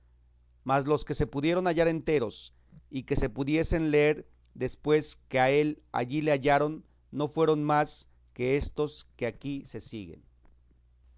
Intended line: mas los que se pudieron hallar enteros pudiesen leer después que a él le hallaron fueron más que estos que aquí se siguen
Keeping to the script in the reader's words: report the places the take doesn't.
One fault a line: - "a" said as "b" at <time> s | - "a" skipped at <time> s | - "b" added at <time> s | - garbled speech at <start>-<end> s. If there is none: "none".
- "y que se" added at 2.9 s
- "allí" added at 5.9 s
- "no" added at 7.1 s